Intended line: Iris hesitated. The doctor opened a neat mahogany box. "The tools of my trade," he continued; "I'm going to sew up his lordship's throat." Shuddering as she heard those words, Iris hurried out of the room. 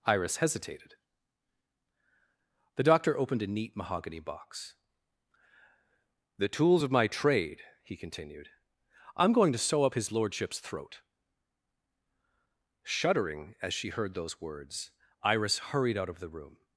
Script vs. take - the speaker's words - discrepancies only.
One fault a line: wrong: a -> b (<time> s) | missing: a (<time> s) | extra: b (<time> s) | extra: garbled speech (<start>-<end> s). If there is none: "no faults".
no faults